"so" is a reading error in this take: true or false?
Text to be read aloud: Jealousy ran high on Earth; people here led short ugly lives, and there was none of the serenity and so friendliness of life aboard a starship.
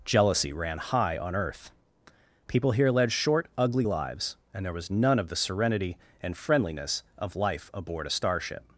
true